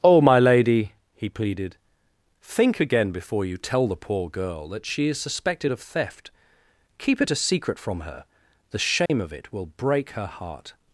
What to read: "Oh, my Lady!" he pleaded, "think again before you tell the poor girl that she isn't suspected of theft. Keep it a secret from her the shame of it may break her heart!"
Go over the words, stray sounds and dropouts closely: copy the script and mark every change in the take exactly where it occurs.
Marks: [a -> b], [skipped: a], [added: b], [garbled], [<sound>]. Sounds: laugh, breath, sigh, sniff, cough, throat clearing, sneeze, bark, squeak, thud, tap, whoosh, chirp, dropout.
"Oh, my Lady!" he pleaded, "think again before you tell the poor girl that she [isn't -> is] suspected of theft. Keep it a secret from her the shame [dropout] of it [may -> will] break her heart!"